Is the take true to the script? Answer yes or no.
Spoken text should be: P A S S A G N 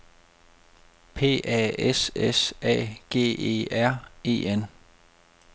no